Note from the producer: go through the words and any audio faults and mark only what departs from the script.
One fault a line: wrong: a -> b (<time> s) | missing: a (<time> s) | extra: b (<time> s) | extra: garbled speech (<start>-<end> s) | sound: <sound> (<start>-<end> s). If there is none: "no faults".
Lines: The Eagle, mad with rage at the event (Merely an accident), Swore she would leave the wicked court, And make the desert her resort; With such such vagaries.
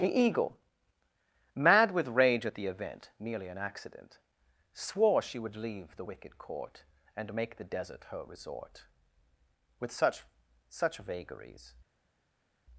no faults